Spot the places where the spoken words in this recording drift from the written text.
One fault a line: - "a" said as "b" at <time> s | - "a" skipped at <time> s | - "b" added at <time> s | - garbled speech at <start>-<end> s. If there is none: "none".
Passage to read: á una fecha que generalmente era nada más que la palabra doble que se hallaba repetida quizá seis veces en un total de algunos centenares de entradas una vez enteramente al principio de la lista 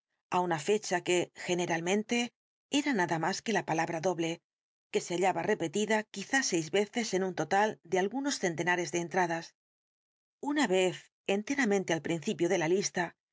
none